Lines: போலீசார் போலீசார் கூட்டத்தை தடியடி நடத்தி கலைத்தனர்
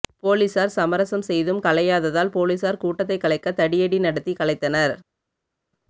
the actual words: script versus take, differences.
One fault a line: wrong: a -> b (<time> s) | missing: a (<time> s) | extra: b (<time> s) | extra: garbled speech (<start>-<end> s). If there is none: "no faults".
extra: சமரசம் செய்தும் கலையாததால் (0.7 s)
extra: கலைக்க (3.2 s)